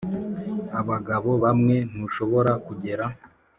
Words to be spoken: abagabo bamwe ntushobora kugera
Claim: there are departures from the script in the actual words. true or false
false